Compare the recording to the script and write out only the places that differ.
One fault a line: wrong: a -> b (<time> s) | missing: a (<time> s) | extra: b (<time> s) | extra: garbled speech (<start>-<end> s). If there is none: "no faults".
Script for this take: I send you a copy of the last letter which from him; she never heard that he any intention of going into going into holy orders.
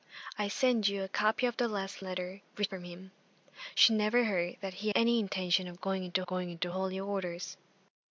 no faults